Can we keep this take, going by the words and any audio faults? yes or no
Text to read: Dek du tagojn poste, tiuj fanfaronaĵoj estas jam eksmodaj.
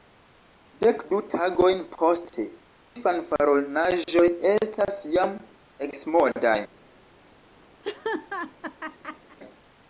no